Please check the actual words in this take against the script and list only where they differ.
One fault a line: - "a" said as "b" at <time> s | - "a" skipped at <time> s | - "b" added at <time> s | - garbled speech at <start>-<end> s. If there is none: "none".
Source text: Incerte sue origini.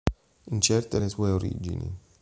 - "le" added at 1.0 s